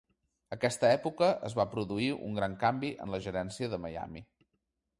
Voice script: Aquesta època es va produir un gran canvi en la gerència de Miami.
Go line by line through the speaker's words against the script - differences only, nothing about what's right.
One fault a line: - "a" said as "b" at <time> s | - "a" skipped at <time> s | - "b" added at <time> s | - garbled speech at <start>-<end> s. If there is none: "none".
none